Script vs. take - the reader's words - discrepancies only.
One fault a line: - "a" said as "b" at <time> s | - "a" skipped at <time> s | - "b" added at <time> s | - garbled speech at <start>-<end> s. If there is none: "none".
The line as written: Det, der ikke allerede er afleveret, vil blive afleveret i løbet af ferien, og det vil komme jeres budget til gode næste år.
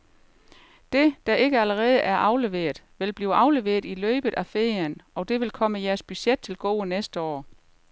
none